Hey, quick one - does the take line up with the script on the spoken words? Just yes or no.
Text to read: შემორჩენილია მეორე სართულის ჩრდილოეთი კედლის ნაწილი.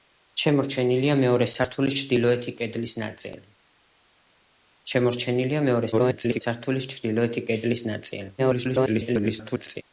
no